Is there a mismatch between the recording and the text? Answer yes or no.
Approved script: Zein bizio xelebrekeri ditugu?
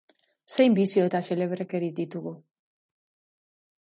yes